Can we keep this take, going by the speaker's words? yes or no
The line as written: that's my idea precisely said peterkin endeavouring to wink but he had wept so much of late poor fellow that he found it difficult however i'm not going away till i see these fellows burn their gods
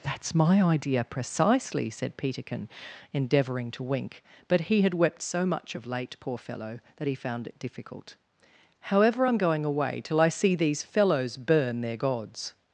no